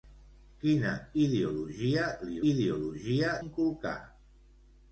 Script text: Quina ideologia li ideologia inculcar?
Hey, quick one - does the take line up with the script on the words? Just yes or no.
yes